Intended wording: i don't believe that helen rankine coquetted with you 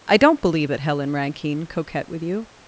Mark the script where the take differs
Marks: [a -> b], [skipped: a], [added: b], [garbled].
i don't believe that helen rankine [coquetted -> coquette] with you